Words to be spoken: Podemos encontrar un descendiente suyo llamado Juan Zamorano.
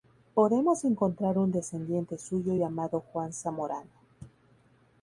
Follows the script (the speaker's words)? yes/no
yes